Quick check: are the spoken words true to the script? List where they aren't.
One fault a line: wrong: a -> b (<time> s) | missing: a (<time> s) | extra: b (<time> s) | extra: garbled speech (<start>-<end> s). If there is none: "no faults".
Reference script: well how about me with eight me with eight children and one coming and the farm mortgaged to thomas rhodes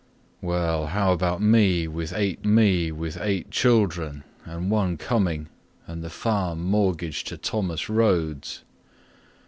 no faults